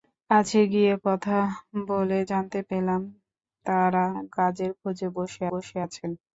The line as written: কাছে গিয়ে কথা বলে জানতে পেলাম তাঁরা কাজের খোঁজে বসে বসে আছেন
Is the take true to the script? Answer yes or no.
yes